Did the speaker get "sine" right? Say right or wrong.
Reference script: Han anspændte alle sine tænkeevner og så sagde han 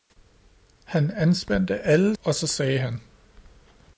wrong